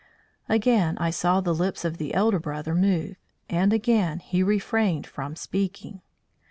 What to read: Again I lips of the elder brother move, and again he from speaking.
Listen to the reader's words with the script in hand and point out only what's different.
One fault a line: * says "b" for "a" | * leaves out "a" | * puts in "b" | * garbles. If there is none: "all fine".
* puts in "saw the"
* puts in "refrained"